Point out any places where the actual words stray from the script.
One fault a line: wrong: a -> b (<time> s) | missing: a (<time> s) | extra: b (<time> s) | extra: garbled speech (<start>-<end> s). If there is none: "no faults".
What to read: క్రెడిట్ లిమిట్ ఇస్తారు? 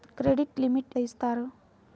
no faults